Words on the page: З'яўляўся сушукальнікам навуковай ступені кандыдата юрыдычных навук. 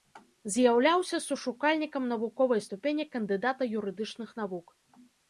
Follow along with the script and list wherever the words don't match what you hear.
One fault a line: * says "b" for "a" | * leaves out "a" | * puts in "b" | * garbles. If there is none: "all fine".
all fine